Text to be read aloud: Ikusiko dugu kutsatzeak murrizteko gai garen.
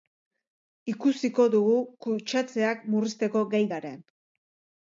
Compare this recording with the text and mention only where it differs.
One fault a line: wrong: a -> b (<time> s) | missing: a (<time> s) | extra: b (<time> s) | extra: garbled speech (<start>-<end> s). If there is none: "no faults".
no faults